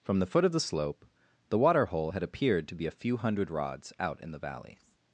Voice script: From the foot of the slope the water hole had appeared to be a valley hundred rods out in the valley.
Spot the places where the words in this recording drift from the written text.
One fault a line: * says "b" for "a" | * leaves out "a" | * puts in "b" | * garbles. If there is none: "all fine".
* says "few" for "valley"